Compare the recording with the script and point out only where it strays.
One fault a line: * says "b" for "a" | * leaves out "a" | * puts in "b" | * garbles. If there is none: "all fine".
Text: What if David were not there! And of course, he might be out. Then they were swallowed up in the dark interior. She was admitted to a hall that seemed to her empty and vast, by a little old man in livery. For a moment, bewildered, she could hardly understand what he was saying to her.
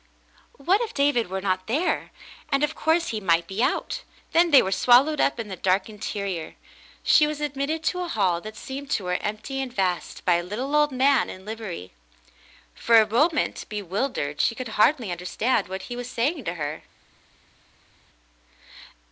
all fine